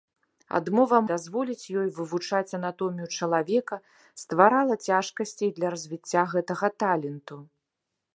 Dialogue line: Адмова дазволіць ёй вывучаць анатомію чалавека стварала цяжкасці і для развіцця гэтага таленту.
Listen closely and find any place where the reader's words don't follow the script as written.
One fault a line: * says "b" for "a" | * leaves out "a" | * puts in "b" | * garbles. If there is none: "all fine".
all fine